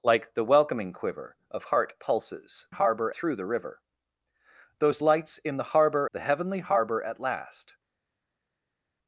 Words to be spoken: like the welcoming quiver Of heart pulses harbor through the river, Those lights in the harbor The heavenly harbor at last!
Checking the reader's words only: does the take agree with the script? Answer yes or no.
yes